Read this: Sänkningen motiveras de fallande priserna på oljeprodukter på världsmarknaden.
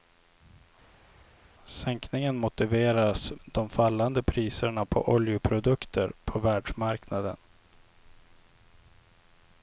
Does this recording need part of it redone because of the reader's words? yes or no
no